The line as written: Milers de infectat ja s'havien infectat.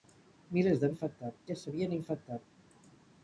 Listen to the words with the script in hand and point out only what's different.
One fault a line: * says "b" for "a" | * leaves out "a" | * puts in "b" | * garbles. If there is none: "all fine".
all fine